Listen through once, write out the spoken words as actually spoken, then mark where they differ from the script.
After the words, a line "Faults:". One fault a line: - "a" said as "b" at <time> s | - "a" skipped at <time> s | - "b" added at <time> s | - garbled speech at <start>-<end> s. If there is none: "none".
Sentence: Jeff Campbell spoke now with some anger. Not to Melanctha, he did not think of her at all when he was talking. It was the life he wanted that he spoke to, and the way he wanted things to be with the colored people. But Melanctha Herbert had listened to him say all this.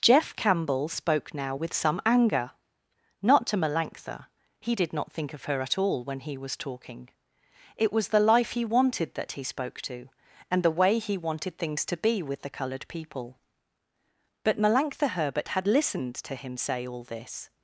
Jeff Campbell spoke now with some anger. Not to Melanctha, he did not think of her at all when he was talking. It was the life he wanted that he spoke to, and the way he wanted things to be with the colored people. But Melanctha Herbert had listened to him say all this.
Faults:
none